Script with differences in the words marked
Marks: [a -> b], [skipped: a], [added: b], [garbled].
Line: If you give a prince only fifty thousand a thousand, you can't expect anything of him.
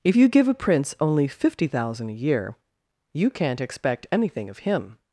If you give a prince only fifty thousand a [thousand, -> year] you can't expect anything of him.